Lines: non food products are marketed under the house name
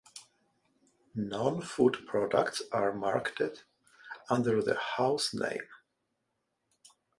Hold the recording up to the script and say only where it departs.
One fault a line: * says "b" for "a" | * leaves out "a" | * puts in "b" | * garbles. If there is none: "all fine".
all fine